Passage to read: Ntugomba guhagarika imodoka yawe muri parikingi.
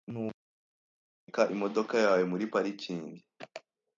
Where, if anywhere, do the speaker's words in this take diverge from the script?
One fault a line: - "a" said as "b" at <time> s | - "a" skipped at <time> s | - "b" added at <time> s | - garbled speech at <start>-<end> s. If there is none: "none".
none